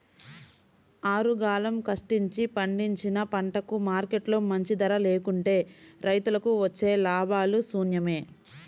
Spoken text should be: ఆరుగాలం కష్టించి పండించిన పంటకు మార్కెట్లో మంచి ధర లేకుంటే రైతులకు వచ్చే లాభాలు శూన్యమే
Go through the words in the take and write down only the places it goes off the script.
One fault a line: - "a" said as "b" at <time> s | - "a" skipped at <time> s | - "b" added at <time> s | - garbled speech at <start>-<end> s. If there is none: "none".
none